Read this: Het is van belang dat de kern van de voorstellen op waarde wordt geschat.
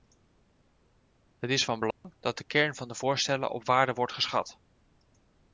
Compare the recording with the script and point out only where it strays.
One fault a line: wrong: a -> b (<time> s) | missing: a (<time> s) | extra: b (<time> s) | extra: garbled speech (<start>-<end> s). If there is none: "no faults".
no faults